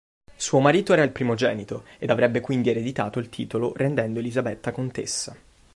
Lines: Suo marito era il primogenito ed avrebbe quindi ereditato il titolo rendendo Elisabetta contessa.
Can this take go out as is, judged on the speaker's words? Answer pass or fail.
pass